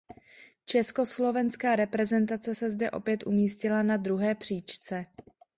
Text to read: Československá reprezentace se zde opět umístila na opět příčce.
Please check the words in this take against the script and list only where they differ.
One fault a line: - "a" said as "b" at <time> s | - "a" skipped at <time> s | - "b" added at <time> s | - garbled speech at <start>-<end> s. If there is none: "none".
- "opět" said as "druhé" at 4.0 s